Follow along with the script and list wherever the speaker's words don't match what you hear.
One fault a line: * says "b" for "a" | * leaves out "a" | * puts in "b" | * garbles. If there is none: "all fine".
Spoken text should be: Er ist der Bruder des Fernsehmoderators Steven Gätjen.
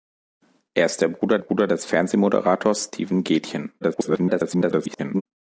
* puts in "Bruder"
* garbles